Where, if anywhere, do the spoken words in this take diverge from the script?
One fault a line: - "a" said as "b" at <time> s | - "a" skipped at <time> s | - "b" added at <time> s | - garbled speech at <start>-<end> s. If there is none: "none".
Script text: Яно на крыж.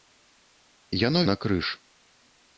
none